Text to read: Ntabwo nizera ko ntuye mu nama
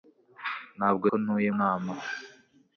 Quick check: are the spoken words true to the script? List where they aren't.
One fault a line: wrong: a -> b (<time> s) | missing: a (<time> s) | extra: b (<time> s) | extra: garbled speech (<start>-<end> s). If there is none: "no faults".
missing: nizera (1.1 s)
missing: mu (1.5 s)